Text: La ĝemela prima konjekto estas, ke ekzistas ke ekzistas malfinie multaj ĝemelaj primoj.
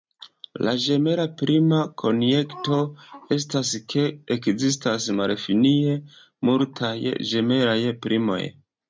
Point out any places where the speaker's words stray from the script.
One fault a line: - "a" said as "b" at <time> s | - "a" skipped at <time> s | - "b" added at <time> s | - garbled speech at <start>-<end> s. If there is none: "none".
- "ke ekzistas" skipped at 5.1 s